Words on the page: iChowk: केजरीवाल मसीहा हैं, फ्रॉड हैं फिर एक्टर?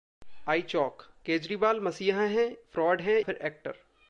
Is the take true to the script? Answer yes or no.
yes